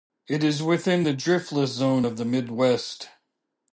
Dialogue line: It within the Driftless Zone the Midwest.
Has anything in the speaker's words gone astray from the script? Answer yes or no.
yes